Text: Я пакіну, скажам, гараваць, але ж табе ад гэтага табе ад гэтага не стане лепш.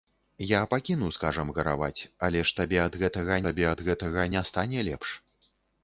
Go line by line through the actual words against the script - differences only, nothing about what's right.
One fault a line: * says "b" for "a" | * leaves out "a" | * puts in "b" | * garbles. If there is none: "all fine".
all fine